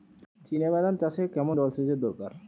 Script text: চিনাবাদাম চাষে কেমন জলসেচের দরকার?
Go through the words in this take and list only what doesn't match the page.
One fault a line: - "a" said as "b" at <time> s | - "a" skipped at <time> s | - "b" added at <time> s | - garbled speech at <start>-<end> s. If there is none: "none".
none